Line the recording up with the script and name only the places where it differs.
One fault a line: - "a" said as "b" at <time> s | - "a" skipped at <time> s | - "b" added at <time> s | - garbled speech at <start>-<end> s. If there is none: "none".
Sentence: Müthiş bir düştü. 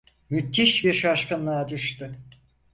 - "şaşkınlığa" added at 0.9 s